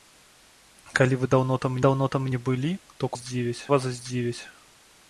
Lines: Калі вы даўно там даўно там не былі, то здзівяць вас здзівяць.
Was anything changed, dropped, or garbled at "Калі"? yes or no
no